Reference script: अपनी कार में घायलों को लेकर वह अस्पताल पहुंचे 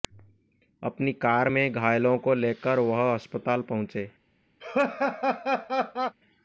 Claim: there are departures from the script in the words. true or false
false